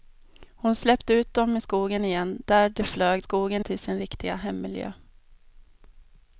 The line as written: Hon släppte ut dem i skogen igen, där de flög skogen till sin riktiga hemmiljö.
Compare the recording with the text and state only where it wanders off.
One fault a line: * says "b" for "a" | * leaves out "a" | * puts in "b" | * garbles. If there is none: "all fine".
all fine